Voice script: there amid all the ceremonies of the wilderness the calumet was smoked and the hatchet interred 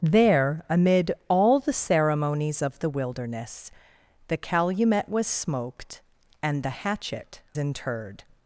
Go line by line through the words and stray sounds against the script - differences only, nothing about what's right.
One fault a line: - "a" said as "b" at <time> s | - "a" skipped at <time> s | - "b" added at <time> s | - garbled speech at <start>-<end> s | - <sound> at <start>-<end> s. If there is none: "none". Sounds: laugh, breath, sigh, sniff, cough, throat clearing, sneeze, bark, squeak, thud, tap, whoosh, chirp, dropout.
none